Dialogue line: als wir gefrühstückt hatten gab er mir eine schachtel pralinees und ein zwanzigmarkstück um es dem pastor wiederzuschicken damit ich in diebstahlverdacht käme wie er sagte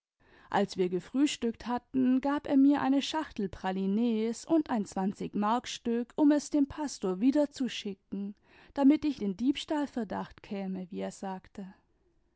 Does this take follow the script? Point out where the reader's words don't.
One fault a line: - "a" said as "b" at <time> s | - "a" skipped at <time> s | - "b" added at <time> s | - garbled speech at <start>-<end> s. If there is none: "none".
none